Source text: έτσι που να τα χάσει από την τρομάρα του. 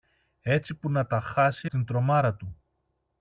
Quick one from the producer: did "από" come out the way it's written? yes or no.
no